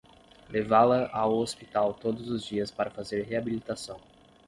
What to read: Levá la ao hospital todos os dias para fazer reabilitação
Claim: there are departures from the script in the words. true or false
false